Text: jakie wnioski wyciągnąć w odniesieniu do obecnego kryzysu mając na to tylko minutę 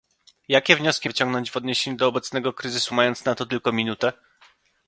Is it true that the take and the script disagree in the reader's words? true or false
false